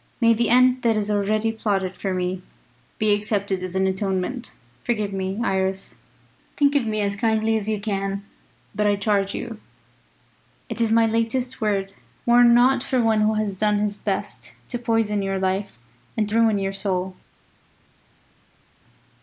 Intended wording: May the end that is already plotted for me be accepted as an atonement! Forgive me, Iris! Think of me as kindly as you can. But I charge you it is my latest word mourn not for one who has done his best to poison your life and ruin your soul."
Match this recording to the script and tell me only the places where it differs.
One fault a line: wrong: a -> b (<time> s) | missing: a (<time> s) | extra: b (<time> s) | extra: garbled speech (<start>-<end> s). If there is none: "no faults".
no faults